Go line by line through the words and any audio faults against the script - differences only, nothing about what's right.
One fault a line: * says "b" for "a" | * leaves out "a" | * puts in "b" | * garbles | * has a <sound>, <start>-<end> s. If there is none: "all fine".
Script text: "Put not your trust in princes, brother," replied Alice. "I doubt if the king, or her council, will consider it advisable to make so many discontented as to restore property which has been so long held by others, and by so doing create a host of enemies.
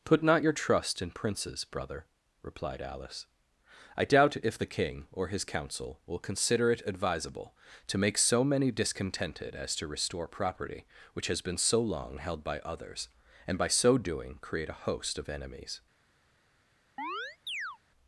* says "his" for "her"
* has a chirp, 17.0-17.8 s